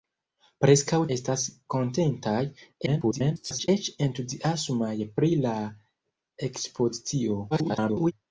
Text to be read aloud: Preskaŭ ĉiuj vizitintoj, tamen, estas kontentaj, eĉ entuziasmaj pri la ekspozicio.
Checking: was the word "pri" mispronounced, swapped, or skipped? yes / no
no